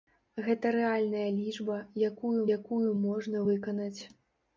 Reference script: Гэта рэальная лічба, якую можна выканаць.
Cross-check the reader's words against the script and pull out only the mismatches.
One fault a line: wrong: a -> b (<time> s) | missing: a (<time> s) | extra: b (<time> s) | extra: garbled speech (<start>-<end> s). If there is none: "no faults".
extra: якую (2.6 s)